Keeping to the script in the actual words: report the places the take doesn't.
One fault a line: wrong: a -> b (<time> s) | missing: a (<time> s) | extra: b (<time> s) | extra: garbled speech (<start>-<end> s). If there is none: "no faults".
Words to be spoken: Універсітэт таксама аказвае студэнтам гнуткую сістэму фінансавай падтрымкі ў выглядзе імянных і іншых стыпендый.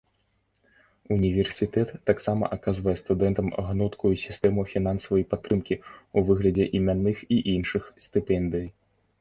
no faults